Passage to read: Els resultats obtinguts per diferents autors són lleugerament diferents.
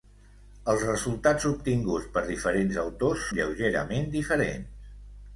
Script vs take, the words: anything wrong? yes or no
yes